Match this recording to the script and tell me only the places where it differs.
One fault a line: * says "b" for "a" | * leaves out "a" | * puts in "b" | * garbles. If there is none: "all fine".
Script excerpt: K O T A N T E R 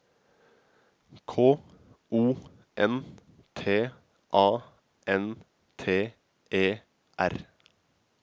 * puts in "N"